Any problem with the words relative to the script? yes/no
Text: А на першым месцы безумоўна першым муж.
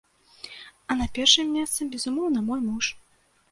yes